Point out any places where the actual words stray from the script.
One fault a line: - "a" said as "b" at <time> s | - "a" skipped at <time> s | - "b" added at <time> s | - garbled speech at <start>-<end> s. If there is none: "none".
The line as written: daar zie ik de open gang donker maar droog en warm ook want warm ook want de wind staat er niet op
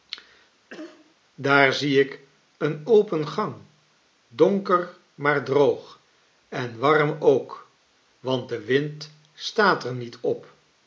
- "de" said as "een" at 2.6 s
- "warm ook want" skipped at 8.5 s